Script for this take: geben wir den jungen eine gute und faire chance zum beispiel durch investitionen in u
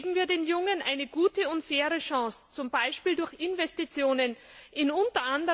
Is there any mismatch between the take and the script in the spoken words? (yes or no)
no